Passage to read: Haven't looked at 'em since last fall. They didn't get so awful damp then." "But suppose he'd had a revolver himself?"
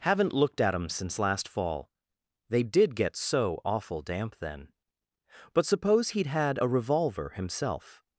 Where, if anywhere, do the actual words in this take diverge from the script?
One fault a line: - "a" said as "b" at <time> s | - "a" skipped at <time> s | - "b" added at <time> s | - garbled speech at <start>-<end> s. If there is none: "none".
- "didn't" said as "did" at 2.6 s